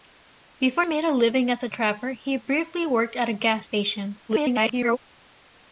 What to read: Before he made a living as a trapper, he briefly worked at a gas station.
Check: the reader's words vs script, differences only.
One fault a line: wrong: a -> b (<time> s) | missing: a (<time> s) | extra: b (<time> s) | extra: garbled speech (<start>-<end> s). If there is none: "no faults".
missing: he (0.8 s)
extra: garbled speech (4.3-5.0 s)